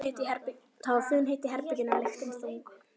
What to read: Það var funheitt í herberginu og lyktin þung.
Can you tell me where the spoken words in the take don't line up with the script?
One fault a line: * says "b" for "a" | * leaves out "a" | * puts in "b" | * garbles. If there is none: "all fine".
all fine